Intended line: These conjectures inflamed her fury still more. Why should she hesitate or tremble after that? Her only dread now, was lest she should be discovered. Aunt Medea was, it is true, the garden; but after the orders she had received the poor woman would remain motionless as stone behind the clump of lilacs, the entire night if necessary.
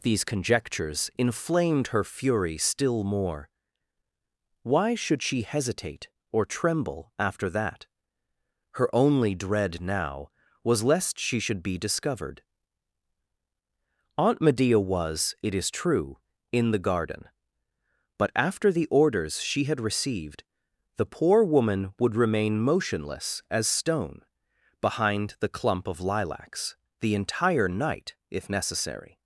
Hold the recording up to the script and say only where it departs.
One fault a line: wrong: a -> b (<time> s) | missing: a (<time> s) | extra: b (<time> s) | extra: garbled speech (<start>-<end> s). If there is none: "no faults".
extra: in (16.5 s)